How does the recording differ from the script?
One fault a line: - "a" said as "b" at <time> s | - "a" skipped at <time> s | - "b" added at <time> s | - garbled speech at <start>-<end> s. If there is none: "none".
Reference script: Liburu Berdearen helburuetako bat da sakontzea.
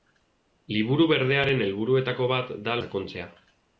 none